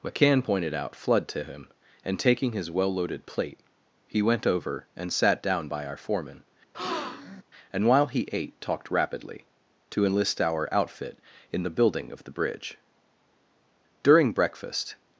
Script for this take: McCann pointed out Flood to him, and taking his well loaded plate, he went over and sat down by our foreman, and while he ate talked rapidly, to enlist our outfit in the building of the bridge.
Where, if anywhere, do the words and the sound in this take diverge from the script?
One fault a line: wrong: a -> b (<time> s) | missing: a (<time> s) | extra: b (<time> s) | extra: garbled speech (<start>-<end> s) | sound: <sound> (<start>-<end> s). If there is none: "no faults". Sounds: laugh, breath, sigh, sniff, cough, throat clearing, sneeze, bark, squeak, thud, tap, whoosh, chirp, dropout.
sound: breath (6.7-7.4 s)
extra: During breakfast (14.0 s)